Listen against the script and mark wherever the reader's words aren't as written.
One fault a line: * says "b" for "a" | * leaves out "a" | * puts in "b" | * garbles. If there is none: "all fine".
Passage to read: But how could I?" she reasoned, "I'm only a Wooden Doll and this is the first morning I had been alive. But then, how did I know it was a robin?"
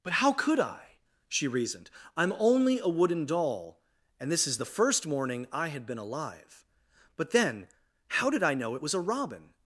all fine